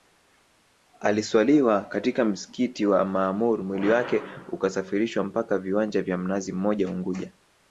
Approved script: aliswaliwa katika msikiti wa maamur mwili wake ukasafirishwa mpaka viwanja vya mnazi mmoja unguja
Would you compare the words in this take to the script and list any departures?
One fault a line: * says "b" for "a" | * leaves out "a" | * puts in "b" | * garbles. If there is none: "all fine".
all fine